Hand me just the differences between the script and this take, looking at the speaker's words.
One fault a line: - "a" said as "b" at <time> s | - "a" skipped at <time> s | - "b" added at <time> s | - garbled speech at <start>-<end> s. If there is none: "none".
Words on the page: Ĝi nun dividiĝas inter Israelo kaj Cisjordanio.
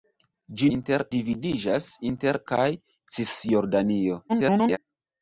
- "nun" said as "inter" at 0.8 s
- "Israelo" skipped at 2.4 s
- garbled speech at 4.3-4.8 s